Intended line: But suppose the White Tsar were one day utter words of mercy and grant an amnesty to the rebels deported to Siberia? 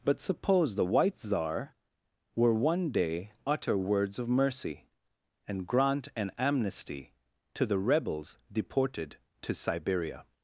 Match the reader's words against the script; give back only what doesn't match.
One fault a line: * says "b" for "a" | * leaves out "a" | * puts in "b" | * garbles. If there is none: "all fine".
all fine